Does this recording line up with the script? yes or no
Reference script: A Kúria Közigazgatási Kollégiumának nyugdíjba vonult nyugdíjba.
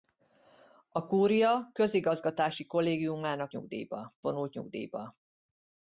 yes